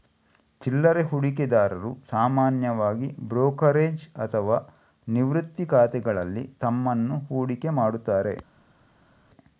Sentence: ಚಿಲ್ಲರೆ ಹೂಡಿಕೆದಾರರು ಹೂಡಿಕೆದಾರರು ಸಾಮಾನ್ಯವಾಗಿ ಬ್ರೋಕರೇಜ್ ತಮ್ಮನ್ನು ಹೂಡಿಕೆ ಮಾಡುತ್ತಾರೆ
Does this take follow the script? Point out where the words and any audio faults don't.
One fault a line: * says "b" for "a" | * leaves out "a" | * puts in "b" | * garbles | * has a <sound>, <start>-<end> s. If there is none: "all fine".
* leaves out "ಹೂಡಿಕೆದಾರರು"
* puts in "ಅಥವಾ ನಿವೃತ್ತಿ ಖಾತೆಗಳಲ್ಲಿ"